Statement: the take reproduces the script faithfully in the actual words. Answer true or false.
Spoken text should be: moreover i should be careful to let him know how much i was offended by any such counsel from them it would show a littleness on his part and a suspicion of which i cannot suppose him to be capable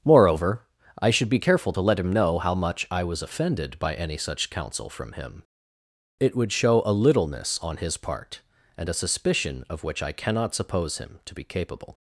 false